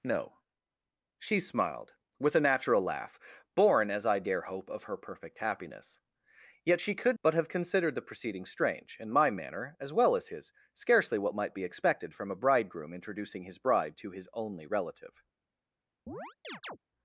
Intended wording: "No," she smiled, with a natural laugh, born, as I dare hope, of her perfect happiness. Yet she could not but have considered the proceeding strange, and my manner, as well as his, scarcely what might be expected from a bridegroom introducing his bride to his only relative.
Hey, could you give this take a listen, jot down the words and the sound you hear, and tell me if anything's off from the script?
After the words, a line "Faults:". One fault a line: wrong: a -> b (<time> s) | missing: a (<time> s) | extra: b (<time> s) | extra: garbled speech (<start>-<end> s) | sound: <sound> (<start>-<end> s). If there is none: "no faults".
"No," she smiled, with a natural laugh, born, as I dare hope, of her perfect happiness. Yet she could but have considered the proceeding strange, and my manner, as well as his, scarcely what might be expected from a bridegroom introducing his bride to his only relative.
Faults:
missing: not (7.2 s)
sound: chirp (16.1-16.8 s)